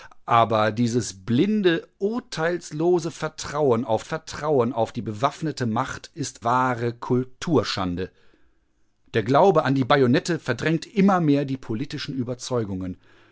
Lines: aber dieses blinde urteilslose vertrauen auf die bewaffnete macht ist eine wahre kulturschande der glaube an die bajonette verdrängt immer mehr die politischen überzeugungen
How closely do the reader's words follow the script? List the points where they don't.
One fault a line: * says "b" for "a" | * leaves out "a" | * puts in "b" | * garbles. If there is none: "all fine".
* puts in "vertrauen auf"
* leaves out "eine"